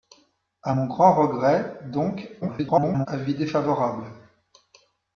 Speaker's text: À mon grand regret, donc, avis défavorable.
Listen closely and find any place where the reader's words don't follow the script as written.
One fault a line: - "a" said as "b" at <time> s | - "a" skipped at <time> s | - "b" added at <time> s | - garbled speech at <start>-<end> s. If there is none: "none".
- garbled speech at 2.4-3.1 s